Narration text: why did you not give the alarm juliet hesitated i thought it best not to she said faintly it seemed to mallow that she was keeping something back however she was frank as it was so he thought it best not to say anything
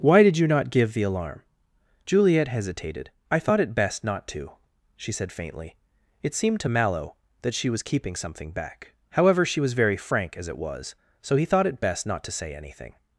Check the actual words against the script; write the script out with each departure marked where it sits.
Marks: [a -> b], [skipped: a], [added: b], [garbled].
why did you not give the alarm juliet hesitated i thought it best not to she said faintly it seemed to mallow that she was keeping something back however she was [added: very] frank as it was so he thought it best not to say anything